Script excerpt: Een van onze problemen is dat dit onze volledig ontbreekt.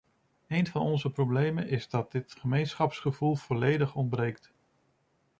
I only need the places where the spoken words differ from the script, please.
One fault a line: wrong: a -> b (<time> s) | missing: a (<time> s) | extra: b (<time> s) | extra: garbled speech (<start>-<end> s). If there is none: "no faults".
wrong: onze -> gemeenschapsgevoel (2.4 s)